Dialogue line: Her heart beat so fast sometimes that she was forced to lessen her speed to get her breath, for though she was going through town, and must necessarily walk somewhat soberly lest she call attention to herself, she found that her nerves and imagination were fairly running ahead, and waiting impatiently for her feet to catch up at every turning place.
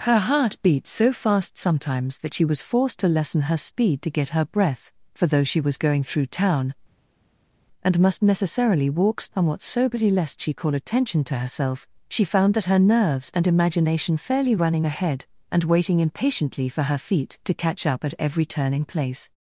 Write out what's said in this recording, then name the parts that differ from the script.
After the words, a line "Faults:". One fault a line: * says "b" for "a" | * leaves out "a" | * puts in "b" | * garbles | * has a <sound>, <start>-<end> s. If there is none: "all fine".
Her heart beat so fast sometimes that she was forced to lessen her speed to get her breath, for though she was going through town, and must necessarily walk somewhat soberly lest she call attention to herself, she found that her nerves and imagination fairly running ahead, and waiting impatiently for her feet to catch up at every turning place.
Faults:
* leaves out "were"